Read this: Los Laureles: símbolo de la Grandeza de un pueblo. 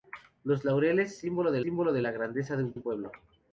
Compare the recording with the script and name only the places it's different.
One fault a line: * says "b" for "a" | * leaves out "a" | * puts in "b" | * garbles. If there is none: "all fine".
* puts in "símbolo de"
* puts in "un"